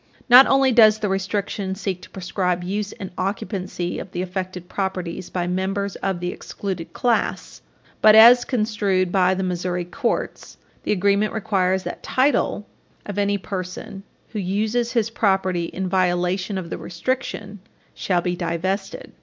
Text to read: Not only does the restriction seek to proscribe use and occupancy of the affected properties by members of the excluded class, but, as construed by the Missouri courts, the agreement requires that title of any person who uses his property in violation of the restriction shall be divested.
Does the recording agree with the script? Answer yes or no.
yes